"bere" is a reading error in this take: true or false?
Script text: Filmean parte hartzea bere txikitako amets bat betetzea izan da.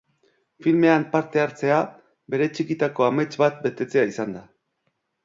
false